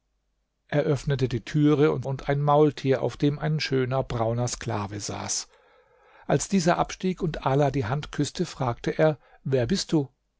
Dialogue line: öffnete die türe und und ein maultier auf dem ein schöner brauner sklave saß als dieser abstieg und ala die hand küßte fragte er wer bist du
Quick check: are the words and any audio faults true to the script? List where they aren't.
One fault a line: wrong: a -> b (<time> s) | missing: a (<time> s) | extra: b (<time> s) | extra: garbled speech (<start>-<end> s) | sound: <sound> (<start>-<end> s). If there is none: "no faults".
no faults